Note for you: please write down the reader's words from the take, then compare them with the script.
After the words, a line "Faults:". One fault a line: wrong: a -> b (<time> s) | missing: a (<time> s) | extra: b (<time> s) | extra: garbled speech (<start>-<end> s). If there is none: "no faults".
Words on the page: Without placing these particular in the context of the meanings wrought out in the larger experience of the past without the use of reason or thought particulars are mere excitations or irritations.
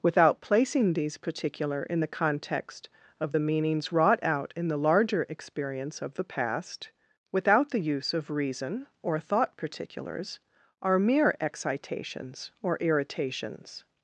Without placing these particular in the context of the meanings wrought out in the larger experience of the past without the use of reason or thought particulars are mere excitations or irritations.
Faults:
no faults